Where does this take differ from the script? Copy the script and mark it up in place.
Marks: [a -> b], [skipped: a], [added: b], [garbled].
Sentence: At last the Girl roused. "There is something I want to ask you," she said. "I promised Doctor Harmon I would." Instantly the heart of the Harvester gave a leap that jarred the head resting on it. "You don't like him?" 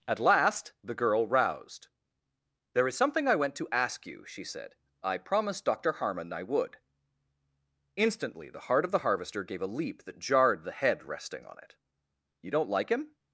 At last the Girl roused. "There is something I [want -> went] to ask you," she said. "I promised Doctor Harmon I would." Instantly the heart of the Harvester gave a leap that jarred the head resting on it. "You don't like him?"